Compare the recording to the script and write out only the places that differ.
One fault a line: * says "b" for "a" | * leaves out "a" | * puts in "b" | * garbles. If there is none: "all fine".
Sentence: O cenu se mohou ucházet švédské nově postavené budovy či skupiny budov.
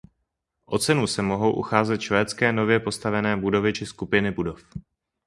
all fine